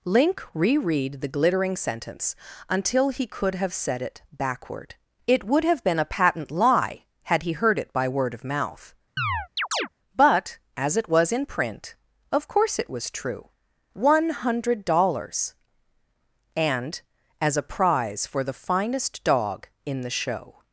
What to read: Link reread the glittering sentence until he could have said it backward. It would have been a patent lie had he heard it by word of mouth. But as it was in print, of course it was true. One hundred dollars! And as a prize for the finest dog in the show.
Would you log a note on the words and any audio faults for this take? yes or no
yes